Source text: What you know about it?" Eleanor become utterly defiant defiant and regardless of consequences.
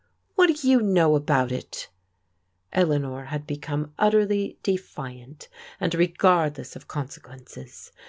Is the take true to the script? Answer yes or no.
no